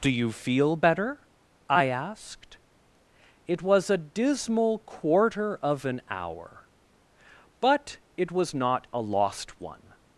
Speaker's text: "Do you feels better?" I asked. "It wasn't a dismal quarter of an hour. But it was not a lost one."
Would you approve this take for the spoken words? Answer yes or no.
no